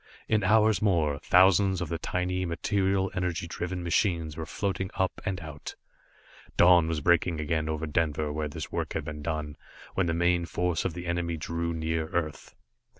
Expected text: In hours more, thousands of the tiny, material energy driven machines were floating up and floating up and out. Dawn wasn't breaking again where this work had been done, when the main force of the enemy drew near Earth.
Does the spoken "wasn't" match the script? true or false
false